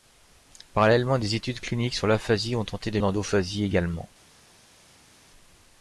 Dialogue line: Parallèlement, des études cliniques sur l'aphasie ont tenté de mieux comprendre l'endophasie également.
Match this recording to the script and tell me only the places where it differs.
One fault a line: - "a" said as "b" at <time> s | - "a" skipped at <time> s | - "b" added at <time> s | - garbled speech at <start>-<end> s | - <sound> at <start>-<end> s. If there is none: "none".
- "mieux comprendre" skipped at 3.0 s